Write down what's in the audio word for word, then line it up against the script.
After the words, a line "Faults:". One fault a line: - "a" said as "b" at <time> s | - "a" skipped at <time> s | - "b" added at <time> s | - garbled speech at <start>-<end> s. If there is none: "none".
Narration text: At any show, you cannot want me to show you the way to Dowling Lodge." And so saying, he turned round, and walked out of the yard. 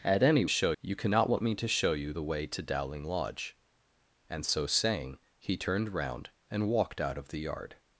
At any show, you cannot want me to show you the way to Dowling Lodge." And so saying, he turned round, and walked out of the yard.
Faults:
none